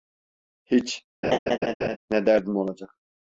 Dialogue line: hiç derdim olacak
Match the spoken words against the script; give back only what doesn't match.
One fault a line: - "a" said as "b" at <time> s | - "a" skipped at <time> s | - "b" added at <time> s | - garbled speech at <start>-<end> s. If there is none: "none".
- "ne" added at 2.1 s